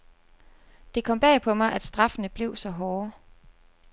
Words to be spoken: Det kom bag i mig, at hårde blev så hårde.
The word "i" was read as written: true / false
false